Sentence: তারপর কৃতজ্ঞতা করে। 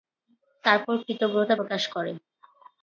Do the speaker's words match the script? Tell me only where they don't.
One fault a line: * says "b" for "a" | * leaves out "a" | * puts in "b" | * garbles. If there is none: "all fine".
* puts in "প্রকাশ"